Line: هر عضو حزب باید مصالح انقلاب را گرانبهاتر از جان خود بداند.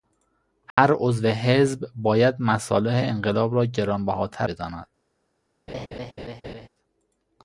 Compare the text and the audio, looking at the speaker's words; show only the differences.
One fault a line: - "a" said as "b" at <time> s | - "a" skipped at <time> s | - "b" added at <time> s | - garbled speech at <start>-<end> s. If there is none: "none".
- "از جان خود" skipped at 4.5 s